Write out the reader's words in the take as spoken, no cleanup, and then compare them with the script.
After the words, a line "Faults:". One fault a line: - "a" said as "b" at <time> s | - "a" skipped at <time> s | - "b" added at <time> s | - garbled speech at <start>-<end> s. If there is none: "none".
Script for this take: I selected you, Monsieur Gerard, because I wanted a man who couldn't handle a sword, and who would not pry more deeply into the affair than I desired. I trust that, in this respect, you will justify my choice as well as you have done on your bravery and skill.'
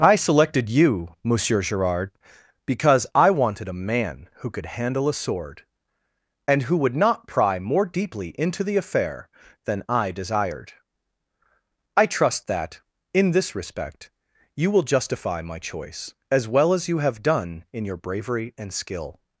I selected you, Monsieur Gerard, because I wanted a man who could handle a sword, and who would not pry more deeply into the affair than I desired. I trust that, in this respect, you will justify my choice as well as you have done in your bravery and skill.'
Faults:
- "couldn't" said as "could" at 4.5 s
- "on" said as "in" at 17.7 s